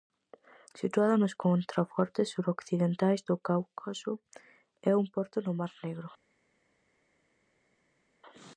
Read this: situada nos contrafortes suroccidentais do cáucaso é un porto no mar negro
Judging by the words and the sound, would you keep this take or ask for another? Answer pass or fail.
pass